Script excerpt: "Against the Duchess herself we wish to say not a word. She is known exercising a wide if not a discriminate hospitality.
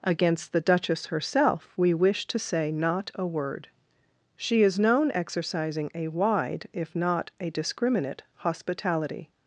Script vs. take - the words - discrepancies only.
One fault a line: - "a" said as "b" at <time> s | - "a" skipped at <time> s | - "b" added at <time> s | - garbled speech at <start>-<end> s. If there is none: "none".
none